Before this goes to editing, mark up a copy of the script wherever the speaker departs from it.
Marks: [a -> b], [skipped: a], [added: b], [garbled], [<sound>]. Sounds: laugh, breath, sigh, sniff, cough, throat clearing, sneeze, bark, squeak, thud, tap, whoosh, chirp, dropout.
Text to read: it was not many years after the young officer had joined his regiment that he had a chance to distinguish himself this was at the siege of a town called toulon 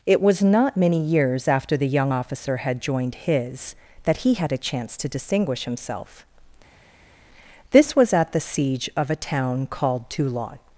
it was not many years after the young officer had joined his [skipped: regiment] that he had a chance to distinguish himself this was at the siege of a town called toulon